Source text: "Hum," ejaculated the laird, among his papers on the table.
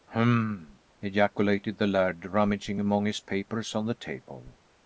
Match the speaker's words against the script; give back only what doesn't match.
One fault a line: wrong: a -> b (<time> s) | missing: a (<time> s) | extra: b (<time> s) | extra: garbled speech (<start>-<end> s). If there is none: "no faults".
extra: rummaging (2.2 s)